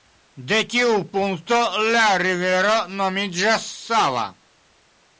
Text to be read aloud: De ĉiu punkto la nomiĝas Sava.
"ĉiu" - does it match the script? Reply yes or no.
no